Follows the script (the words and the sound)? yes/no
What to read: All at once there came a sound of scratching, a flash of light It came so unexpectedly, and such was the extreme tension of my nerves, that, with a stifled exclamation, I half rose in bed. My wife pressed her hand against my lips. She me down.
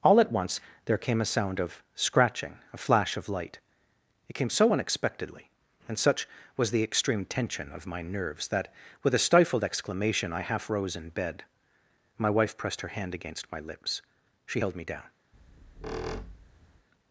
no